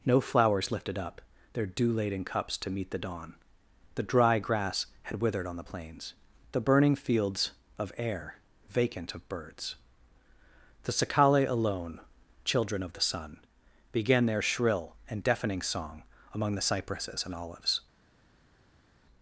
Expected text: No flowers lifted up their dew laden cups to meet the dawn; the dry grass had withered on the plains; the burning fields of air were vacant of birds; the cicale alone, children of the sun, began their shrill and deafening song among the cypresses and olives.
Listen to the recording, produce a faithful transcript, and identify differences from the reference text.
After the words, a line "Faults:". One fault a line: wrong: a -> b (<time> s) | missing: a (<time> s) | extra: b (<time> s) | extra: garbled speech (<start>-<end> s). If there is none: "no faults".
No flowers lifted up their dew laden cups to meet the dawn; the dry grass had withered on the plains; the burning fields of air vacant of birds; the cicale alone, children of the sun, began their shrill and deafening song among the cypresses and olives.
Faults:
missing: were (8.4 s)